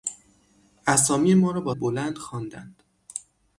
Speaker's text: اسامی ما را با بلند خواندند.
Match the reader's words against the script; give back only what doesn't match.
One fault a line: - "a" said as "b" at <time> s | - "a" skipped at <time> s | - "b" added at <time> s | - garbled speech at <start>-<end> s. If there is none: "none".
none